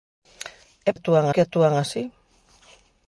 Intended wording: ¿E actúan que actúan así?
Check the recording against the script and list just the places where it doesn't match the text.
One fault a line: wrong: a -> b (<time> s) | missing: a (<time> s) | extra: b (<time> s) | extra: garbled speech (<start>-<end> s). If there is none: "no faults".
no faults